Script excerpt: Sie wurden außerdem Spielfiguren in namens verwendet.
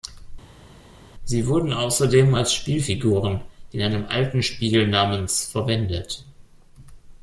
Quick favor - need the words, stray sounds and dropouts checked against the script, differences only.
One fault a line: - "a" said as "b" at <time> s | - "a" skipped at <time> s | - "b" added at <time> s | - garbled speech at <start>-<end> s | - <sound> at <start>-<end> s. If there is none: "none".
- "als" added at 2.3 s
- "einem alten Spiel" added at 3.8 s